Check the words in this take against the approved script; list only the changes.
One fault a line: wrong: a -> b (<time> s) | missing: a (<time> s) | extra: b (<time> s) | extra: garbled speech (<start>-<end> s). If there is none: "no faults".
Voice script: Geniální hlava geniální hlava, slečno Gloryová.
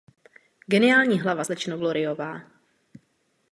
missing: geniální hlava (1.4 s)